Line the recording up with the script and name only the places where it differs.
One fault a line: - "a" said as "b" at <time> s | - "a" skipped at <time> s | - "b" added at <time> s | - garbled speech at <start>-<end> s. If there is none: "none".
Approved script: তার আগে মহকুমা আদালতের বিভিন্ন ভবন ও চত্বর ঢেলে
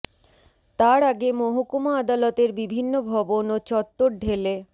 none